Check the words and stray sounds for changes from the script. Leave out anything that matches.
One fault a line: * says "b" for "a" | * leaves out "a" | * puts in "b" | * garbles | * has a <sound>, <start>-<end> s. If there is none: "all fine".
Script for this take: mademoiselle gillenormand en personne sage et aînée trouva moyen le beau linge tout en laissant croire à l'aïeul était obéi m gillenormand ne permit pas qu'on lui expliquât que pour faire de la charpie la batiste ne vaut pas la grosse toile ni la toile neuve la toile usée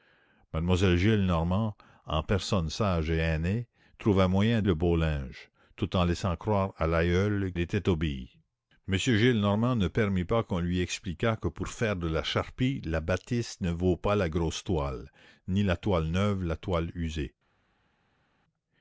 all fine